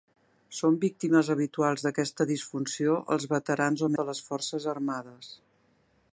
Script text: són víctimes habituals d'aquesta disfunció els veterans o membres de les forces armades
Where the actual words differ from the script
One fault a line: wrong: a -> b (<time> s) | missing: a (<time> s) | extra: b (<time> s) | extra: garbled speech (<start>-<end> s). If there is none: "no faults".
missing: membres (3.9 s)